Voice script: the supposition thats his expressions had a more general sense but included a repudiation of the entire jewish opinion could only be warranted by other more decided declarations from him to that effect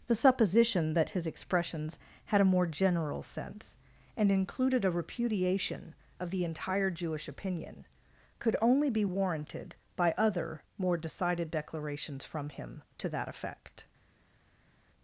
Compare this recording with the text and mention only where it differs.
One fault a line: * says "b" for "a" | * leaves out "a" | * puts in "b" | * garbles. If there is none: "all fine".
* says "that" for "thats"
* says "and" for "but"